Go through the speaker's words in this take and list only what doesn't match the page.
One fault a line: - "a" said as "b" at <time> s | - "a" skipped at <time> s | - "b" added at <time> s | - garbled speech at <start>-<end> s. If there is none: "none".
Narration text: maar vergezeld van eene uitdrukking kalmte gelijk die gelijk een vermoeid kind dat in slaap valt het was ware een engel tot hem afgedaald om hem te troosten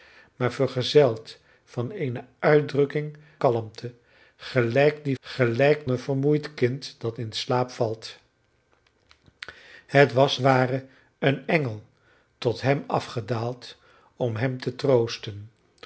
none